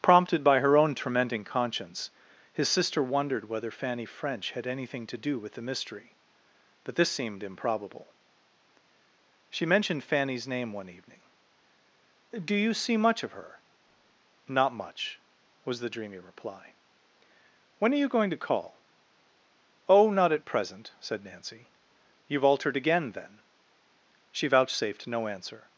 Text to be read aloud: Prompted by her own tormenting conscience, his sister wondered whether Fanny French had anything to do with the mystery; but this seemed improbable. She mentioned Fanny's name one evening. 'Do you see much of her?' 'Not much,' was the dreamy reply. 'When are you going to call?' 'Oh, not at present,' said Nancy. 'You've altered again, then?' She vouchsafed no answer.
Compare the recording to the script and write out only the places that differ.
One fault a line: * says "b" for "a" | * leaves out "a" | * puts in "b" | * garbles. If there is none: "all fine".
all fine